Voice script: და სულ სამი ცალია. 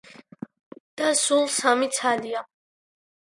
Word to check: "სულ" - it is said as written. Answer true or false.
true